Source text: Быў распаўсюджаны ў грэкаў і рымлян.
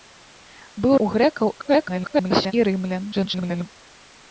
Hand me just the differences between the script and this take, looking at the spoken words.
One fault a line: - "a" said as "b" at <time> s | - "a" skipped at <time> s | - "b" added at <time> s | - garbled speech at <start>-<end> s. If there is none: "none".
- "распаўсюджаны" skipped at 0.9 s
- garbled speech at 1.6-2.5 s
- garbled speech at 3.1-3.7 s